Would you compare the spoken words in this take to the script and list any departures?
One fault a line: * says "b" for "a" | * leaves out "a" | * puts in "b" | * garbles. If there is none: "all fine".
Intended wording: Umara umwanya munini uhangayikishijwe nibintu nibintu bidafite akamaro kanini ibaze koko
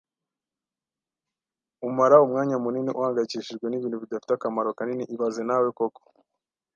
* leaves out "nibintu"
* puts in "nawe"